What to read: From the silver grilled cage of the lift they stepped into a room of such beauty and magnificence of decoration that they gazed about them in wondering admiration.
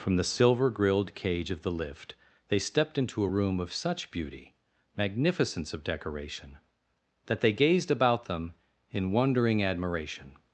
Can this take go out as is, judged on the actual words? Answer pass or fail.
fail